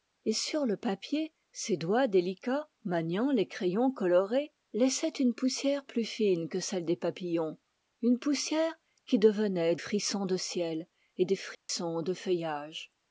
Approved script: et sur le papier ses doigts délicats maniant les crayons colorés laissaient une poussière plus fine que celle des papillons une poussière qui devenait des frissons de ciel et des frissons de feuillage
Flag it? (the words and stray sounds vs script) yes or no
yes